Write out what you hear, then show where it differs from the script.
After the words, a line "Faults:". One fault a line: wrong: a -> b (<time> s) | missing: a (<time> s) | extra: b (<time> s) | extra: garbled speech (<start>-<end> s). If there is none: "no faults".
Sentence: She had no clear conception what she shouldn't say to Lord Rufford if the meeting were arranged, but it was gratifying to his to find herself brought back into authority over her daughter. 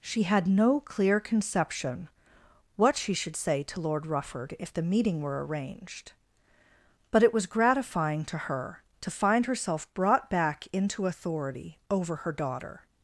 She had no clear conception what she should say to Lord Rufford if the meeting were arranged, but it was gratifying to her to find herself brought back into authority over her daughter.
Faults:
wrong: shouldn't -> should (3.1 s)
wrong: his -> her (8.5 s)